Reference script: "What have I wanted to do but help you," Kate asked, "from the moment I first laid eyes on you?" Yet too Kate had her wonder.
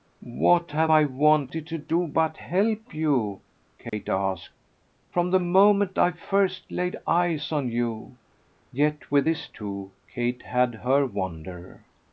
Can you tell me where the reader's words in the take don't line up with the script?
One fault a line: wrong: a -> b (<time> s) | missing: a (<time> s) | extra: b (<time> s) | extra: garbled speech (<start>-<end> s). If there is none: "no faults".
extra: with this (9.1 s)